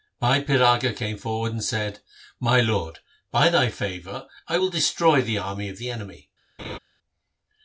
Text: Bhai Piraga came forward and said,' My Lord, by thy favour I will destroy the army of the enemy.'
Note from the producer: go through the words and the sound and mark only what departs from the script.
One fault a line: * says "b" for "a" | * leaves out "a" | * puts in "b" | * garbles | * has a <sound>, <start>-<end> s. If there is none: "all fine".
* has a laugh, 6.6-6.8 s